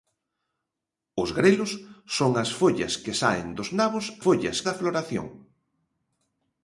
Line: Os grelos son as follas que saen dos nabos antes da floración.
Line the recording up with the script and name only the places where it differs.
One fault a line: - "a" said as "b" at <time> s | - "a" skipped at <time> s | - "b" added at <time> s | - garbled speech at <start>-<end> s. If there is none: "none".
- "antes" said as "follas" at 4.2 s